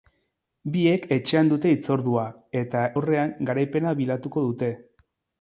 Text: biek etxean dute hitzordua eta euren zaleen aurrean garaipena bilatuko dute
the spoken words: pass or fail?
fail